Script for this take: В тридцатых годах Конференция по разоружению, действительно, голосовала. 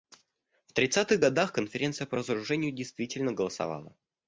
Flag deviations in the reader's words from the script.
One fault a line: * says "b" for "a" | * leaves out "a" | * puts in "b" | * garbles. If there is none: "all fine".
all fine